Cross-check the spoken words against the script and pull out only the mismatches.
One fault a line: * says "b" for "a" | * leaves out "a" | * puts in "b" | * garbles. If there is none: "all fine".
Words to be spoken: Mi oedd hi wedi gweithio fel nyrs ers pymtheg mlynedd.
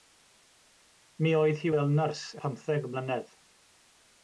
* leaves out "wedi gweithio"
* leaves out "ers"